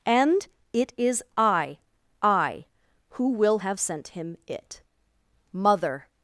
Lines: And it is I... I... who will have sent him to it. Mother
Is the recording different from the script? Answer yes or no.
yes